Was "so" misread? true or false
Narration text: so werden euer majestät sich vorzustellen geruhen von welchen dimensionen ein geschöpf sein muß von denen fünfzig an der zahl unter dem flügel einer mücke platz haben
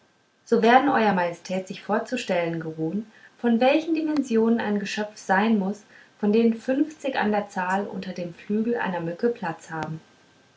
false